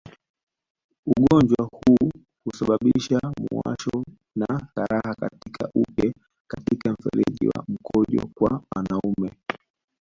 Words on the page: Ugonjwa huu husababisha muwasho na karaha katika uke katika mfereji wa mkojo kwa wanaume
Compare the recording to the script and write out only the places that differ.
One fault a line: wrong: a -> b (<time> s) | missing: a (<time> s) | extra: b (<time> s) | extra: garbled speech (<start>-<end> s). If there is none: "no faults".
no faults